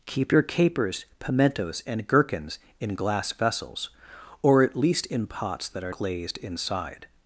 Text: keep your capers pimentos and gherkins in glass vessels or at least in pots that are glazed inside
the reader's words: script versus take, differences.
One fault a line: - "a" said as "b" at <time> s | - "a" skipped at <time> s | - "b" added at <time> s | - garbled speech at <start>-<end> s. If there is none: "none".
none